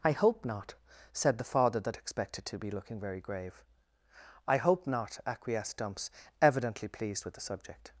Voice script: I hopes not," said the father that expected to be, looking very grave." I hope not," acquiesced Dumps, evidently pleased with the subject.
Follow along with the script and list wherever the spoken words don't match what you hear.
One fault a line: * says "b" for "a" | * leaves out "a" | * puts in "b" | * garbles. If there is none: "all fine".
* says "hope" for "hopes"